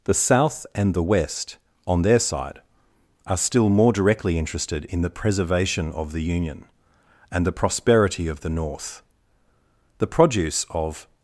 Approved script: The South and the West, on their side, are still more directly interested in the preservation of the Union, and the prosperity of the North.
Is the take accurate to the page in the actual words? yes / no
no